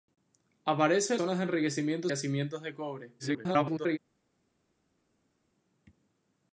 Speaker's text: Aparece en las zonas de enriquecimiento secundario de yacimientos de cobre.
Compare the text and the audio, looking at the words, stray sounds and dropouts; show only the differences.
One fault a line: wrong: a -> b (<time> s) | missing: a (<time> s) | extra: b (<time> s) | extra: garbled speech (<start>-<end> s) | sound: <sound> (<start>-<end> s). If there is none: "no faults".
missing: las (1.2 s)
missing: secundario de (2.1 s)
extra: garbled speech (3.2-4.0 s)